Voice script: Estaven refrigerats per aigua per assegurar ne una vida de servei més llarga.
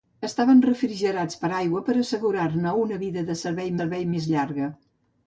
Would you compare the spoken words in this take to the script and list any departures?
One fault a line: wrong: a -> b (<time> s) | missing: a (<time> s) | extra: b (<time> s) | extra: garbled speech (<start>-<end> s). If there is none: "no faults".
extra: servei (3.8 s)